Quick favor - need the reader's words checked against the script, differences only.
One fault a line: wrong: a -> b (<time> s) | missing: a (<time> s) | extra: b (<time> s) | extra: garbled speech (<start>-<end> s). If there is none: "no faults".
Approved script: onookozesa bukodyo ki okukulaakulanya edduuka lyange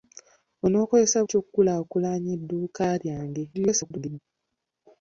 missing: bukodyo (1.2 s)
extra: garbled speech (3.5-4.2 s)